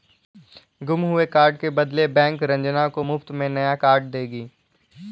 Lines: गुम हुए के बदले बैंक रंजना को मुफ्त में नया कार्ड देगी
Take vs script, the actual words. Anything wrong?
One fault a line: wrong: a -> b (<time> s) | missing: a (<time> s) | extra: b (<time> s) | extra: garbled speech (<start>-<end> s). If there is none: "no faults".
extra: कार्ड (1.2 s)